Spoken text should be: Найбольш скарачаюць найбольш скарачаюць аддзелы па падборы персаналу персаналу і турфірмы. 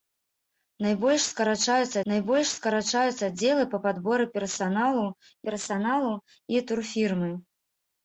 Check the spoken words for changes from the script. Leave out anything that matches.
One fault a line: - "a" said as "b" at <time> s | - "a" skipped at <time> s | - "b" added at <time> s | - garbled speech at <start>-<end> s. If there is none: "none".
none